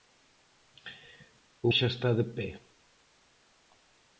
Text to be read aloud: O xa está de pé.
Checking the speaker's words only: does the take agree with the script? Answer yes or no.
yes